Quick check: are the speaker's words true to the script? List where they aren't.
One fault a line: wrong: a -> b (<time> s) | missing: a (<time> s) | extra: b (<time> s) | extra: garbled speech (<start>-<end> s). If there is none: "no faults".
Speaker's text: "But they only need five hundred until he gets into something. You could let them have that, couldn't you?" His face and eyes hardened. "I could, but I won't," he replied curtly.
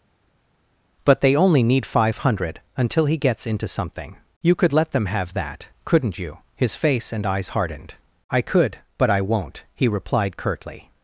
no faults